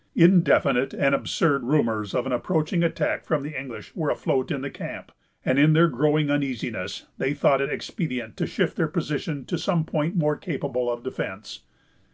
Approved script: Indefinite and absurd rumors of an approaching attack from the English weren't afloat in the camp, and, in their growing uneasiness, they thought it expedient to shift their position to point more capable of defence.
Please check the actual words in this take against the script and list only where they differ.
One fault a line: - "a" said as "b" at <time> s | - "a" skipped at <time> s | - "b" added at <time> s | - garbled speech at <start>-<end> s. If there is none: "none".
- "weren't" said as "were" at 4.0 s
- "some" added at 9.6 s